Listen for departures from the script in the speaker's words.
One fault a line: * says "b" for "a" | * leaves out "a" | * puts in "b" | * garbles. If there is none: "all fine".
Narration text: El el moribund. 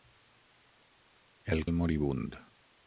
all fine